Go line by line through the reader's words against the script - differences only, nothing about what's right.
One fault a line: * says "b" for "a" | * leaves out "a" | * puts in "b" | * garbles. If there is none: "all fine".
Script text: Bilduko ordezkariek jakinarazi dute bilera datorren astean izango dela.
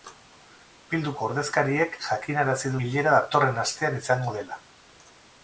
* leaves out "dute"